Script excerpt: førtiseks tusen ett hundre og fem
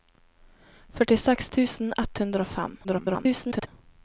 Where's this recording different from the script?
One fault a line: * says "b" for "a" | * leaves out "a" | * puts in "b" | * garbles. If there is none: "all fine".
* garbles